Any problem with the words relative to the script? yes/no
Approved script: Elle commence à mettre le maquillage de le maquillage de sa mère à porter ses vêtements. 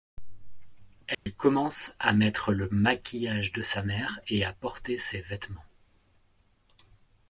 yes